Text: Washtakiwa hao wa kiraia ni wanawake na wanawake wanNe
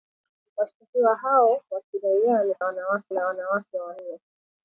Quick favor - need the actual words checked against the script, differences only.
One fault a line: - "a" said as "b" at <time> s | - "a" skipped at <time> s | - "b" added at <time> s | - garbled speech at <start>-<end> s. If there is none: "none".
none